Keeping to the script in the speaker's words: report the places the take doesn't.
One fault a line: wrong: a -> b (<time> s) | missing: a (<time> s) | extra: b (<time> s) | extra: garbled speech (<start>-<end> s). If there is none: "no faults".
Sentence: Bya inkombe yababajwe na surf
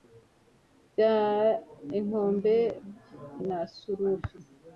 missing: yababajwe (2.5 s)